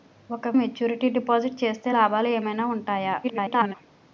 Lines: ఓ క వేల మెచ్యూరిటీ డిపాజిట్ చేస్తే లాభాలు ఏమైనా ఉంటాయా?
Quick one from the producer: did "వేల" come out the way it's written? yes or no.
no